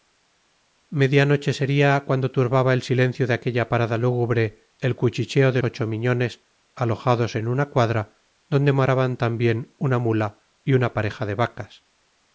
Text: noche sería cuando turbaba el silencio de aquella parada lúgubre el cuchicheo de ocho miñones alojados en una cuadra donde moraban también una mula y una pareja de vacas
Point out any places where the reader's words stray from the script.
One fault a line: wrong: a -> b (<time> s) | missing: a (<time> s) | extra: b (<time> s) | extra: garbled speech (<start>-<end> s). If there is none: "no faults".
no faults